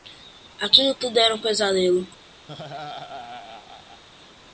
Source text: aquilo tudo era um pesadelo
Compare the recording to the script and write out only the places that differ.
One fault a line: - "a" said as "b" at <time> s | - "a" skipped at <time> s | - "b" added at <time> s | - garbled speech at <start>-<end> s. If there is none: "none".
none